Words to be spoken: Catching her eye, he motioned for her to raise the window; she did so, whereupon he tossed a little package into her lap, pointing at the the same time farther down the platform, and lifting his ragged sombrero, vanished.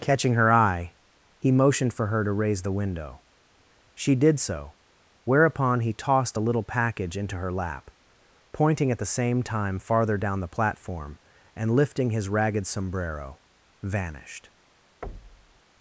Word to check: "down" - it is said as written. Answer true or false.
true